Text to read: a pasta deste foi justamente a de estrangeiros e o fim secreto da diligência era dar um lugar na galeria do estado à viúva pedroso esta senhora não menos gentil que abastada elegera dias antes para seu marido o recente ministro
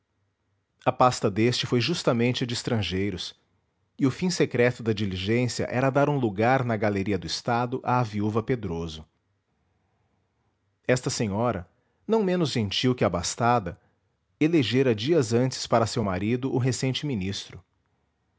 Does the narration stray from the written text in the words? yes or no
no